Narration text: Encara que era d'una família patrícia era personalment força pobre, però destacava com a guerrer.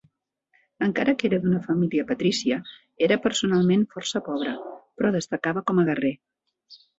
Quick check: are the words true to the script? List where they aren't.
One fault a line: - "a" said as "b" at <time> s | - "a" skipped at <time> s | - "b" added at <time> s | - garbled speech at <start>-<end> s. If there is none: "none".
none